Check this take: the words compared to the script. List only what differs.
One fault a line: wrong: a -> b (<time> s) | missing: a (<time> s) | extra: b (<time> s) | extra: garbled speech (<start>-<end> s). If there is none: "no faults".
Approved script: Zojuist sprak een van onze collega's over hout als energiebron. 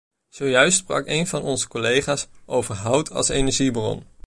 no faults